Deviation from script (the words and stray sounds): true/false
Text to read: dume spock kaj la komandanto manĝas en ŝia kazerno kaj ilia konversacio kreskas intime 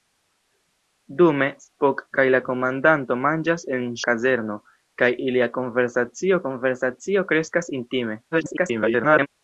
true